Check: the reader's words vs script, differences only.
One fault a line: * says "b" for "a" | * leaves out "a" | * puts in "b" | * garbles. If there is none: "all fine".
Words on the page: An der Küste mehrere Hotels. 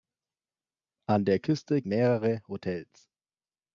all fine